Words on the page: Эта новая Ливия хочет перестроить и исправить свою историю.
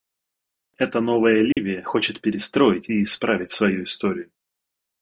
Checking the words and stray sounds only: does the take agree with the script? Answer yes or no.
no